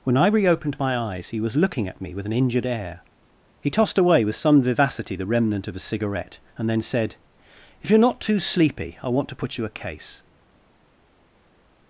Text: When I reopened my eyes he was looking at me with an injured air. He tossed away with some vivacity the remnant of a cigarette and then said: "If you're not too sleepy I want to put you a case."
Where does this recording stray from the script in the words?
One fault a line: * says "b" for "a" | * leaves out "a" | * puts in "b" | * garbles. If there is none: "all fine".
all fine